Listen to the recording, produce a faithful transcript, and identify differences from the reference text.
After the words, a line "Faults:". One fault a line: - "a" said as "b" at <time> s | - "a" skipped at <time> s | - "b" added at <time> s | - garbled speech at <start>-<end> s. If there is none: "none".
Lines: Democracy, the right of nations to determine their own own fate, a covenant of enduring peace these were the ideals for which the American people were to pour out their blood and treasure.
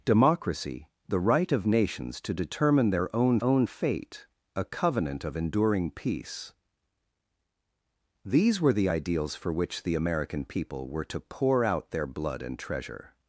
Democracy, the right of nations to determine their own own fate, a covenant of enduring peace these were the ideals for which the American people were to pour out their blood and treasure.
Faults:
none